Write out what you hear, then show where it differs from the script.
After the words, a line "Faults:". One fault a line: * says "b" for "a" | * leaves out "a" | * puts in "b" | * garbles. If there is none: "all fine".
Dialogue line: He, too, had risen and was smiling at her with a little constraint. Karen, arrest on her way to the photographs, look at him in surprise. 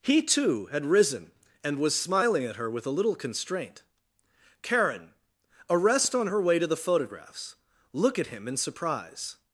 He, too, had risen and was smiling at her with a little constraint. Karen, arrest on her way to the photographs, look at him in surprise.
Faults:
all fine